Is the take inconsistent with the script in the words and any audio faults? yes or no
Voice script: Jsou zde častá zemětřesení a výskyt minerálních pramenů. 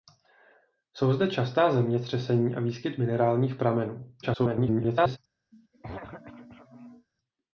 yes